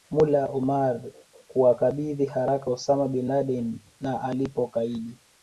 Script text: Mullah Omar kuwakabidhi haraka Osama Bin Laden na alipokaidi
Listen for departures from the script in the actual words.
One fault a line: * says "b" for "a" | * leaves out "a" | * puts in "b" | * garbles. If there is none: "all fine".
all fine